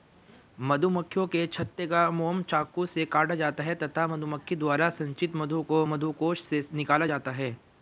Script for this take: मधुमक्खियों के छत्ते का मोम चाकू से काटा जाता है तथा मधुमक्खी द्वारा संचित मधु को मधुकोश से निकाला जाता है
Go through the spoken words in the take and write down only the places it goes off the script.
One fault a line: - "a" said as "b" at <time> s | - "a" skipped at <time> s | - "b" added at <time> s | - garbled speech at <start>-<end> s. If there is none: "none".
none